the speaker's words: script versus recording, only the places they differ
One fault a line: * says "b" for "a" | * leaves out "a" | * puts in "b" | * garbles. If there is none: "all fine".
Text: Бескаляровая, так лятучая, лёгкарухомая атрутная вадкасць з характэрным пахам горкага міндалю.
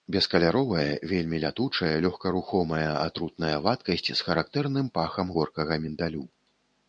* says "вельмі" for "так"